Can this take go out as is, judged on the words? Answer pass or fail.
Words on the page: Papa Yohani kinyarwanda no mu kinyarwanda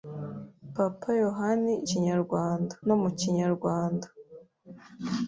pass